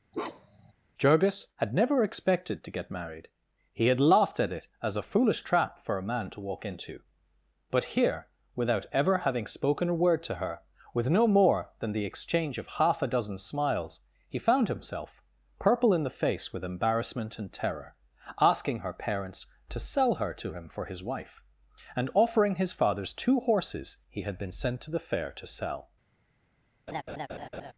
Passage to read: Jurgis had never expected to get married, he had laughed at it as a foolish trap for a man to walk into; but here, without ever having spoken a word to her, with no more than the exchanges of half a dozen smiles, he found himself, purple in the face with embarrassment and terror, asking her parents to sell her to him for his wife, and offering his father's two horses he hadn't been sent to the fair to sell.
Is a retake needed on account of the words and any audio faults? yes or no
yes